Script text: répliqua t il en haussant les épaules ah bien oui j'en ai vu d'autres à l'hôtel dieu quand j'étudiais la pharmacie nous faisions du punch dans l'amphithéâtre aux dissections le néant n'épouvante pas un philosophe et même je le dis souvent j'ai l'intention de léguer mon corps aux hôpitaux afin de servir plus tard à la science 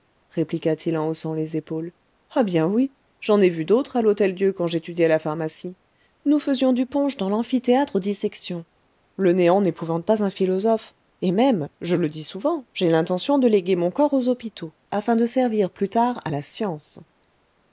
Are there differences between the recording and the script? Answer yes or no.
no